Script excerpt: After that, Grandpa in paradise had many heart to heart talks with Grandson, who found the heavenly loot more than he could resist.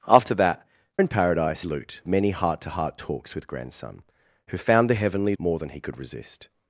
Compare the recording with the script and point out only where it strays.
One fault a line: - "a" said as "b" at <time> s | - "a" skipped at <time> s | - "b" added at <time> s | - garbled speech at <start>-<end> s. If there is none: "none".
- "Grandpa" skipped at 0.7 s
- "had" said as "loot" at 1.6 s
- "loot" skipped at 5.4 s